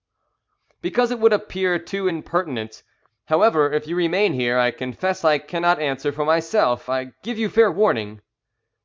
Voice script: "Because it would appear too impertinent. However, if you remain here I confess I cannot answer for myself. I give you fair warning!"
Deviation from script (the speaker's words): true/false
false